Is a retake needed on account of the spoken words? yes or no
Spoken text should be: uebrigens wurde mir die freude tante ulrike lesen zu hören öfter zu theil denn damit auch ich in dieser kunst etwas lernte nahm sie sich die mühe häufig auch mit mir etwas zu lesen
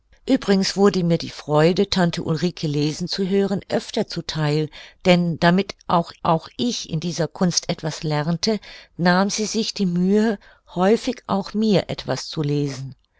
yes